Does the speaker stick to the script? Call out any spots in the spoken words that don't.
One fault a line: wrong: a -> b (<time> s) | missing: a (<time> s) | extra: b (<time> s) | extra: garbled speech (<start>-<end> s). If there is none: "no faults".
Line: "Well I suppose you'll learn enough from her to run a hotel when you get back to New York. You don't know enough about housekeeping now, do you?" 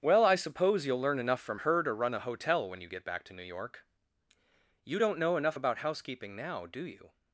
no faults